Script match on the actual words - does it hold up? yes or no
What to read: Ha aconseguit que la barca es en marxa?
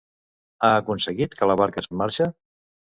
yes